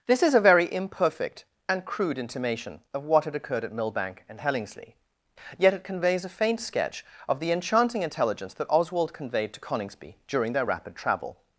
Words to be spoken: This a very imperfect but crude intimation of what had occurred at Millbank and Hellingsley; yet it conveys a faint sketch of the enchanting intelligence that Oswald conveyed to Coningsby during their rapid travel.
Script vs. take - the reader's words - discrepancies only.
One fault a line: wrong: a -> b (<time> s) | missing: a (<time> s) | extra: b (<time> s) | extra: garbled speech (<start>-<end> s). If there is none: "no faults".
extra: is (0.2 s)
wrong: but -> and (1.7 s)